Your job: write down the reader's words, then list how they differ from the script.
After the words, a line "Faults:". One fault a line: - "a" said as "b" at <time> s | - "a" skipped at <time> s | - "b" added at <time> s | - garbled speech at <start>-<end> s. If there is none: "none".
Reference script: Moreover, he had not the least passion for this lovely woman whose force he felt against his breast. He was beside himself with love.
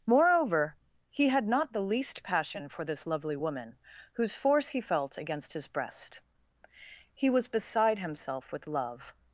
Moreover, he had not the least passion for this lovely woman whose force he felt against his breast. He was beside himself with love.
Faults:
none